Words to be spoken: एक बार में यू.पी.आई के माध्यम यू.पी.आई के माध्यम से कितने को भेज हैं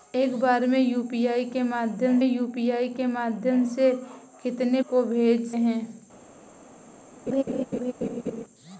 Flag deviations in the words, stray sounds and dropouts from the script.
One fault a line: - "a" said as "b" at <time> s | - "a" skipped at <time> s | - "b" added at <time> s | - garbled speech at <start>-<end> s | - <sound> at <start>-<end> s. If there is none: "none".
- laugh at 7.3-8.4 s